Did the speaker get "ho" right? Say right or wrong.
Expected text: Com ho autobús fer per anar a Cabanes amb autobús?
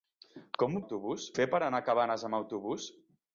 right